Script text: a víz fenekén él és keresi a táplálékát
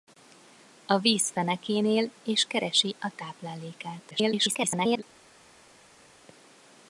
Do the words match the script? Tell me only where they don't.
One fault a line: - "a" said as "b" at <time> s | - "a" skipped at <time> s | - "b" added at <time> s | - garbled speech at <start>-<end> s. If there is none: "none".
- garbled speech at 4.1-5.0 s